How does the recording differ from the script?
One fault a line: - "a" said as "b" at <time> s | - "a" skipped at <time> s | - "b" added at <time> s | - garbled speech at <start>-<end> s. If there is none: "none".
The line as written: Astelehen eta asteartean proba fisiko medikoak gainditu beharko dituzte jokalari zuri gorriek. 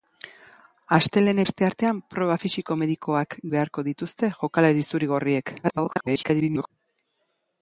- "eta" skipped at 1.4 s
- "gainditu" skipped at 3.4 s
- garbled speech at 5.6-6.7 s